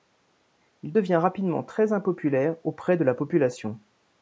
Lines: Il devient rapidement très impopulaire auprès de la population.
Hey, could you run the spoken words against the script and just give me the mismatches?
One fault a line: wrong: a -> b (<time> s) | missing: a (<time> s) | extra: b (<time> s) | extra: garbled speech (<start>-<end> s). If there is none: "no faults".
no faults